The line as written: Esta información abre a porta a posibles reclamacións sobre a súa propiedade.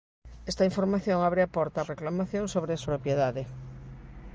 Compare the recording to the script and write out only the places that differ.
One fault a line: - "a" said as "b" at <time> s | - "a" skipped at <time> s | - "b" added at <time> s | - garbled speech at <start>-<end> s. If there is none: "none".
- "posibles" skipped at 1.9 s
- "súa" skipped at 2.8 s